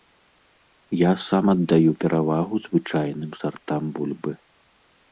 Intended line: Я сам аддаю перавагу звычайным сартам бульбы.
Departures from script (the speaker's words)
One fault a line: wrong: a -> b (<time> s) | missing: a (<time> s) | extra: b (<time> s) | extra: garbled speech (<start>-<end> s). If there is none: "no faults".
no faults